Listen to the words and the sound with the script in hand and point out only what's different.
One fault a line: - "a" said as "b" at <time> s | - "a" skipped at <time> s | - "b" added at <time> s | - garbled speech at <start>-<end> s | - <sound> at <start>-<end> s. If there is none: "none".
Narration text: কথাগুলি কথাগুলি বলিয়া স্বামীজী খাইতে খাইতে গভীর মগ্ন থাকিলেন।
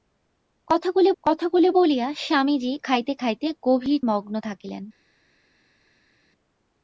none